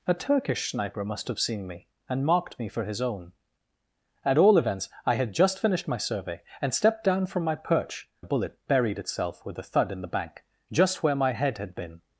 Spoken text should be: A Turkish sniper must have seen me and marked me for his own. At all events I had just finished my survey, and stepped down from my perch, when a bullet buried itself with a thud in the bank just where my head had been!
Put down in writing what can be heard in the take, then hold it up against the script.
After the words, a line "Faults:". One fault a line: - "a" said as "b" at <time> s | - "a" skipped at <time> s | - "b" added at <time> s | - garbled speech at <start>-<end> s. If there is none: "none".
A Turkish sniper must have seen me and marked me for his own. At all events I had just finished my survey, and stepped down from my perch, a bullet buried itself with a thud in the bank just where my head had been!
Faults:
- "when" skipped at 8.1 s